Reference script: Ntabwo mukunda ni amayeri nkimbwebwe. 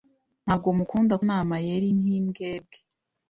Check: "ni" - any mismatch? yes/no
no